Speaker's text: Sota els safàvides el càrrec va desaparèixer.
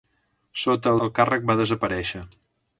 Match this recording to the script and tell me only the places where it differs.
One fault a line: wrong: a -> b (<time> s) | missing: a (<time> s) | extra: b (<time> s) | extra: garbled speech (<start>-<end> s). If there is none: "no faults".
missing: els safàvides (0.9 s)